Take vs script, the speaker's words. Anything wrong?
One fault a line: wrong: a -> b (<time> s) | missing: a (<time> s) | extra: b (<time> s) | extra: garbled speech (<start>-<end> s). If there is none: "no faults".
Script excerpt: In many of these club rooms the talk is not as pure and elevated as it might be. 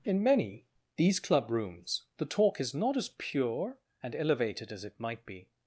missing: of (0.7 s)